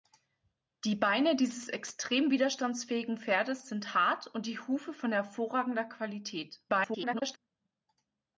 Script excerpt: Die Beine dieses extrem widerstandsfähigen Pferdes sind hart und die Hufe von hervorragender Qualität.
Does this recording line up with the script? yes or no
no